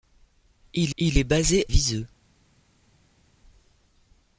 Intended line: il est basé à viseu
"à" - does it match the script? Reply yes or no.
no